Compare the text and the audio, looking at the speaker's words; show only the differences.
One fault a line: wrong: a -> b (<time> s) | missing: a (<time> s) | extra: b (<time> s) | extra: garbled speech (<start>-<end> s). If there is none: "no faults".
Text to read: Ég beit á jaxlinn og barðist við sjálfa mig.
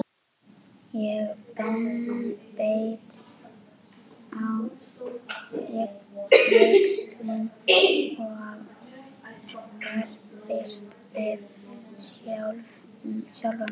no faults